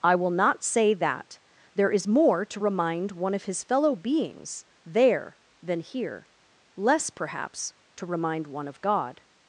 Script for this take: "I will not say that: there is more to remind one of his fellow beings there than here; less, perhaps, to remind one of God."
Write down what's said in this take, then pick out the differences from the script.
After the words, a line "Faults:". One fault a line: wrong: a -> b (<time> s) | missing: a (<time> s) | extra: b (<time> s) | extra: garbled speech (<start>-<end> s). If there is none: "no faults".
"I will not say that: there is more to remind one of his fellow beings there than here; less, perhaps, to remind one of God."
Faults:
no faults